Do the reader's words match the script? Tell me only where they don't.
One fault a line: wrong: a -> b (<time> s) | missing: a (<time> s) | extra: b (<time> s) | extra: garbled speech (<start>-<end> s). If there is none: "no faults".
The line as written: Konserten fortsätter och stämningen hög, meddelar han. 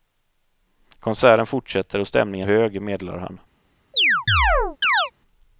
no faults